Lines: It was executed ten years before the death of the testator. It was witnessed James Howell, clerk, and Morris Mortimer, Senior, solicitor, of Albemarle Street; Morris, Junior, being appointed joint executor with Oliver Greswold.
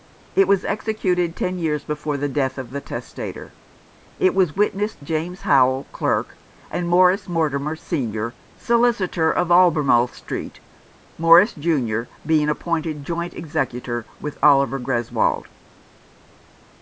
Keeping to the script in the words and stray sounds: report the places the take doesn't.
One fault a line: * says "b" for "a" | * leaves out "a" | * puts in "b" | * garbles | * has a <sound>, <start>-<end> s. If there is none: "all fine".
all fine